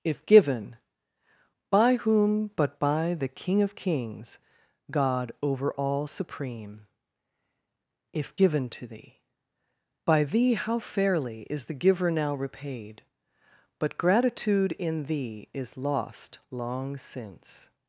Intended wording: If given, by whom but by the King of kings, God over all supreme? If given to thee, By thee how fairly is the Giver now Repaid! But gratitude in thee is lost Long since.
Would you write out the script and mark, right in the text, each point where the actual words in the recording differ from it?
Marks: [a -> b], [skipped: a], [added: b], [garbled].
If given, by whom but by the King of kings, God over all supreme? If given to thee, By thee how fairly is the Giver now Repaid! But gratitude in thee is lost Long since.